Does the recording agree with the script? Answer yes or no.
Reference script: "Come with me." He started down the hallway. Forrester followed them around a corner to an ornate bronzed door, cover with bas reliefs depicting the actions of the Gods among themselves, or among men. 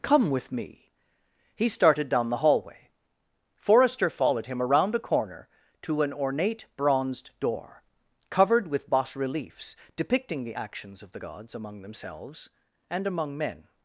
no